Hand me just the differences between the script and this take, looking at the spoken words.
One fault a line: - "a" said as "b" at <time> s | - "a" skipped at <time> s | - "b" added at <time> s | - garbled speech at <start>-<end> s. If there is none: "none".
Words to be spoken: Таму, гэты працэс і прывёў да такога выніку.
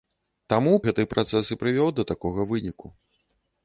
none